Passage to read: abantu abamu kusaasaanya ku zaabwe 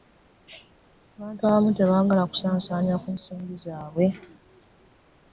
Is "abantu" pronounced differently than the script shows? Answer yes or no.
no